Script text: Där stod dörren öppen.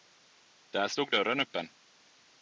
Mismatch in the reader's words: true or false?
false